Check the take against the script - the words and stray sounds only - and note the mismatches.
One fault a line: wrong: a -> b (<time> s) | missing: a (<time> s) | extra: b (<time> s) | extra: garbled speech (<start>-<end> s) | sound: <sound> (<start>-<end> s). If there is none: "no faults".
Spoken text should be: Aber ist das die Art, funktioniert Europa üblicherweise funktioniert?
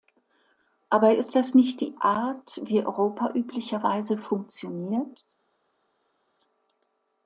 extra: nicht (1.5 s)
wrong: funktioniert -> wie (2.6 s)